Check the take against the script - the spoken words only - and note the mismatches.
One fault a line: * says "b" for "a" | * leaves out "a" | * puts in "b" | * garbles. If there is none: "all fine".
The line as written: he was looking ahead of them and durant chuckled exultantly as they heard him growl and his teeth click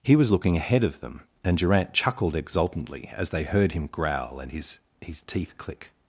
* puts in "his"